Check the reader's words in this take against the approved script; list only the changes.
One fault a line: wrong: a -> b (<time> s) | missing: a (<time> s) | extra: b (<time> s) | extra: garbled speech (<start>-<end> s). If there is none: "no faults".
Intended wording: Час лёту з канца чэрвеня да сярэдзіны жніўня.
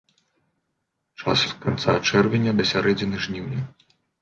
missing: лёту (1.4 s)